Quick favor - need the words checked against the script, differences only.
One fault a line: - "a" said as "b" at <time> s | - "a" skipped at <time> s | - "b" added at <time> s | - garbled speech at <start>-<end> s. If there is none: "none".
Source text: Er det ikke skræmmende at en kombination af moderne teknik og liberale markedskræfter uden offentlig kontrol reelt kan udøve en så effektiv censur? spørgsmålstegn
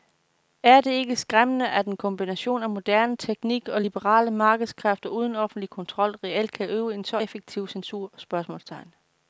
none